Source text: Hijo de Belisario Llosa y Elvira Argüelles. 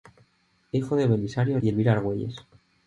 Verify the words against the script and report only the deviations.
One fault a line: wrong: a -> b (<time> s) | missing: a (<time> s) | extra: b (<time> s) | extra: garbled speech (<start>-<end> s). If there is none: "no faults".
missing: Llosa (1.6 s)